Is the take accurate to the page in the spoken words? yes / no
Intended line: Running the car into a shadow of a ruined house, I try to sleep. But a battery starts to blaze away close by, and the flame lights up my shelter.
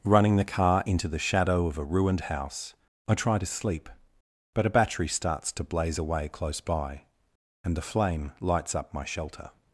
no